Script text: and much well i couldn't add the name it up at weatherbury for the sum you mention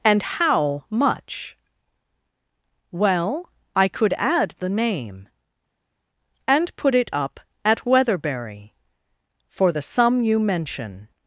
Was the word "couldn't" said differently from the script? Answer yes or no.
yes